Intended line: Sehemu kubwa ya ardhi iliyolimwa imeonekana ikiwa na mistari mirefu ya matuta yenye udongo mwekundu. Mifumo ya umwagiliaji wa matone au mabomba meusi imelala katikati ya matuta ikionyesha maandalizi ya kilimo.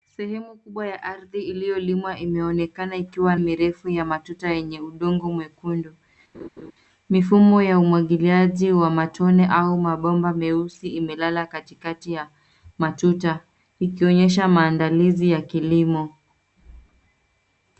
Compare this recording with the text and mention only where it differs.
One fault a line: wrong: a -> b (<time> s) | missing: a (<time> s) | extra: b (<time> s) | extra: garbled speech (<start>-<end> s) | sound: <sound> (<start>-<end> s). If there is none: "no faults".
missing: na mistari (3.4 s)
sound: laugh (6.3-6.7 s)